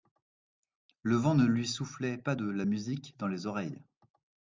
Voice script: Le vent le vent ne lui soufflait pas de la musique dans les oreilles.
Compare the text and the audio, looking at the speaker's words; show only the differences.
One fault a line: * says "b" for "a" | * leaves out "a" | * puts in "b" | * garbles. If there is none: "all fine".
* leaves out "le vent"